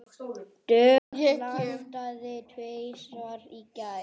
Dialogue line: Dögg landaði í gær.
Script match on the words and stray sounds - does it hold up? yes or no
no